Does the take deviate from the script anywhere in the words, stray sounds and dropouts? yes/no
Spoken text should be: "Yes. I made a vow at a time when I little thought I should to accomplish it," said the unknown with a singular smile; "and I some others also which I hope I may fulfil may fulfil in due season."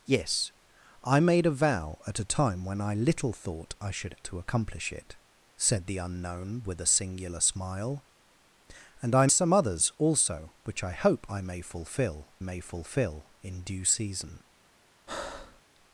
yes